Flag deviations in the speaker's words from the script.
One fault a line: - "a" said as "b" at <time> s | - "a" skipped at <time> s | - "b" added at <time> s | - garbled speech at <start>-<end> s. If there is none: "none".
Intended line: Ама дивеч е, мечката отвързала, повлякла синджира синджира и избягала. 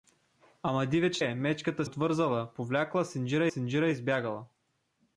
none